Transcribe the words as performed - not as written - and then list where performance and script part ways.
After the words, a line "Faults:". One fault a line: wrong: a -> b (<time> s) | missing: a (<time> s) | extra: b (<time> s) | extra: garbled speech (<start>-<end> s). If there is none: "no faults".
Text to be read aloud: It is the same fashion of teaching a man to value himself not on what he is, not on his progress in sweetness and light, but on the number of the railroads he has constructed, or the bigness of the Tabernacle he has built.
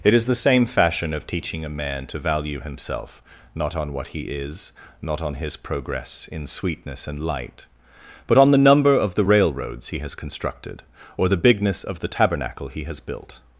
It is the same fashion of teaching a man to value himself not on what he is, not on his progress in sweetness and light, but on the number of the railroads he has constructed, or the bigness of the Tabernacle he has built.
Faults:
no faults